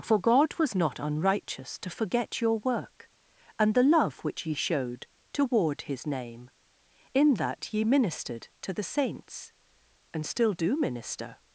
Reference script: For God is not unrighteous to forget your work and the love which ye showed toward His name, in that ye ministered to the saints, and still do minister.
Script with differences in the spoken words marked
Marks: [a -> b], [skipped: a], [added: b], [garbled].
For God [is -> was] not unrighteous to forget your work and the love which ye showed toward His name, in that ye ministered to the saints, and still do minister.